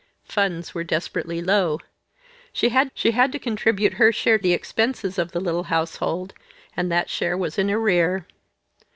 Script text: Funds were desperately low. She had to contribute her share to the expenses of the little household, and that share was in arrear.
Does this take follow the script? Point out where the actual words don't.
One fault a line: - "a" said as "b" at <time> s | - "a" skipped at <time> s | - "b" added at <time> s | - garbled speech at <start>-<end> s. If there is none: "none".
- "she had" added at 2.9 s
- "to" skipped at 4.4 s